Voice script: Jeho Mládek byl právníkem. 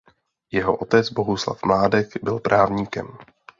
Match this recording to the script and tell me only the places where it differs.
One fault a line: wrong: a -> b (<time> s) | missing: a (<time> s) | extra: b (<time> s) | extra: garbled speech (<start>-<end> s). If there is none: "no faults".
extra: otec Bohuslav (0.7 s)